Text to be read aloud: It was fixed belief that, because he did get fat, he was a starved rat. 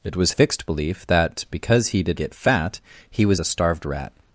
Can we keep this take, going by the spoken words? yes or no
yes